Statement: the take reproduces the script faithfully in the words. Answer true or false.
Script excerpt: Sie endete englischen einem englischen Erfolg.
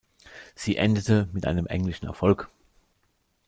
false